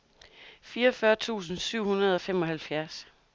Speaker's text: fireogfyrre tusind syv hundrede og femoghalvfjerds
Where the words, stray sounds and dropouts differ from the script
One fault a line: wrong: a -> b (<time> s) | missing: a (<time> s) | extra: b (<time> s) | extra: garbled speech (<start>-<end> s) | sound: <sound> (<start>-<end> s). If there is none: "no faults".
no faults